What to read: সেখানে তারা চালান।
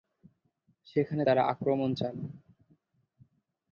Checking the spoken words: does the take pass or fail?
fail